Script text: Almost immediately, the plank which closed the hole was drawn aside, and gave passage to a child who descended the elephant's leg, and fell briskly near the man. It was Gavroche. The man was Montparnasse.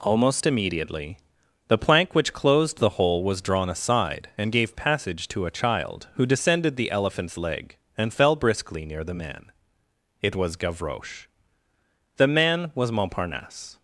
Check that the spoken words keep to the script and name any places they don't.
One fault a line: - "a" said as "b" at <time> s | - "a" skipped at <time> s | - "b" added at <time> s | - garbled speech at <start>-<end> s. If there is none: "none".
none